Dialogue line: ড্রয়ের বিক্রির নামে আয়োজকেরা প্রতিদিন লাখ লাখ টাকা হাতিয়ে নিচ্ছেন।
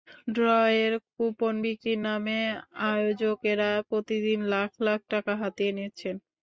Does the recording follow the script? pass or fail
fail